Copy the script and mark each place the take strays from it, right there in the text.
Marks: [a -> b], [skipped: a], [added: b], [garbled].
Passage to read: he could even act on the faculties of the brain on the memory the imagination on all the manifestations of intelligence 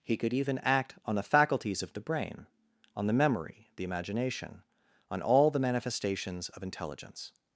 he could even act on the faculties of the brain on the memory the imagination on all the manifestations of intelligence